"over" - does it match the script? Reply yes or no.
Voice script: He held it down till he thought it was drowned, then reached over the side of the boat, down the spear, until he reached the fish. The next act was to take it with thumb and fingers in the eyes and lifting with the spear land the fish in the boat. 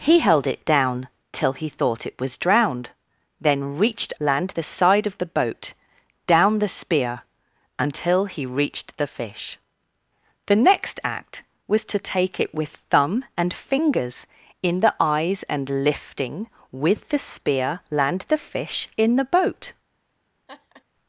no